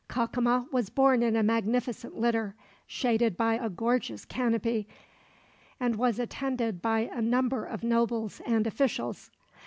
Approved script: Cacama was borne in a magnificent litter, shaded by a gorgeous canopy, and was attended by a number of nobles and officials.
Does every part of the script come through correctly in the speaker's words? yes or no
yes